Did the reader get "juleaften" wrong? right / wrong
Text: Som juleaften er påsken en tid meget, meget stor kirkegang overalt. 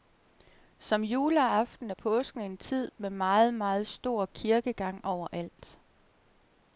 right